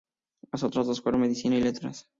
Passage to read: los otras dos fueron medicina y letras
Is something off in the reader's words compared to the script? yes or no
yes